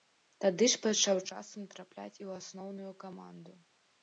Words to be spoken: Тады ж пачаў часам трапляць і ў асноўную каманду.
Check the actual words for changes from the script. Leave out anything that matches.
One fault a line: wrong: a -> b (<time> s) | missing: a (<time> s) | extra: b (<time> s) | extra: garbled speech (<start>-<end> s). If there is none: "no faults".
no faults